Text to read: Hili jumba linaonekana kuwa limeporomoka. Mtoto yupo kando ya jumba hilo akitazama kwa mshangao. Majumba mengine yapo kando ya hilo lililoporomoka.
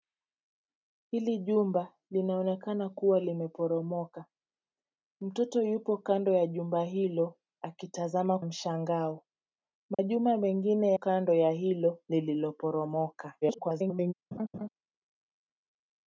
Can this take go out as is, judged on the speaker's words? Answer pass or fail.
fail